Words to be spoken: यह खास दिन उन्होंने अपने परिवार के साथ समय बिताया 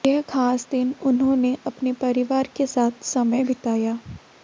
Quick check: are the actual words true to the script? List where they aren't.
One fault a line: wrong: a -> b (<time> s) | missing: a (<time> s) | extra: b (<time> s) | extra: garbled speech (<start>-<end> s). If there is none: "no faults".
no faults